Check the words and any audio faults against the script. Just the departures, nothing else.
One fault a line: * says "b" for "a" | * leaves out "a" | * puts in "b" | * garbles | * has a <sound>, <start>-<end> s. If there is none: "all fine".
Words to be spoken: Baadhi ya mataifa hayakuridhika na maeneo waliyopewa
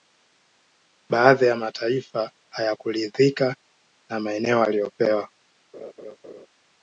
* has a laugh, 5.7-6.5 s